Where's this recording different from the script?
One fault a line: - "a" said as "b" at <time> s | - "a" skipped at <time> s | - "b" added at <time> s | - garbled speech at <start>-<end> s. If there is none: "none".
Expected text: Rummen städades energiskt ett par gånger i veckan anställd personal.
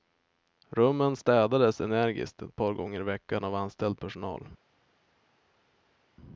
- "av" added at 3.4 s